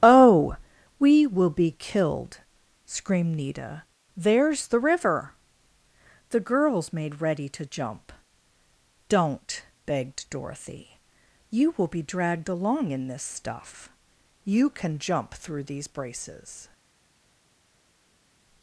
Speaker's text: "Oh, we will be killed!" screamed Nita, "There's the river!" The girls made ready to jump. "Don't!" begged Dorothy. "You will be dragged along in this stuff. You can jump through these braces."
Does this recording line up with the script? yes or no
yes